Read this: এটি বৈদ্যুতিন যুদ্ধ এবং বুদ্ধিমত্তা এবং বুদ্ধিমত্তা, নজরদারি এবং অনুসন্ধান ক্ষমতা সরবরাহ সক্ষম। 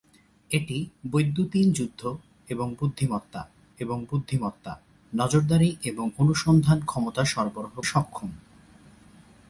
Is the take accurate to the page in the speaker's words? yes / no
yes